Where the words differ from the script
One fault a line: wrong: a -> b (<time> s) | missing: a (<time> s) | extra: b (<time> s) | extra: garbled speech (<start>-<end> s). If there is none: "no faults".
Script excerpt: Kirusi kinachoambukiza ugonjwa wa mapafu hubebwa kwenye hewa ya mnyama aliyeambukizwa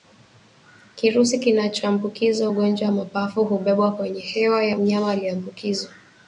no faults